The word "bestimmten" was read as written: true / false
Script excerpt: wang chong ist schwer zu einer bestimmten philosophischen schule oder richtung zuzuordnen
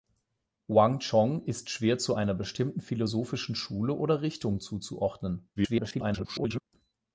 true